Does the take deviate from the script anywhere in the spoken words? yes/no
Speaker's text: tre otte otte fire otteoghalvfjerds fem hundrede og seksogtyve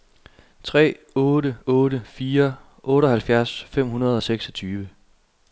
no